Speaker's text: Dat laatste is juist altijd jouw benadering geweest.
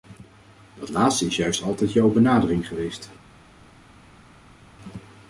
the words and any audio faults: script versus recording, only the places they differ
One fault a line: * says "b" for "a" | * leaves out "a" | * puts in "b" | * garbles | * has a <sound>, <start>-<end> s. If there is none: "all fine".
all fine